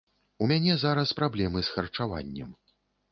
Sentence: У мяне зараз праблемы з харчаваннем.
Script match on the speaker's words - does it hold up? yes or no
yes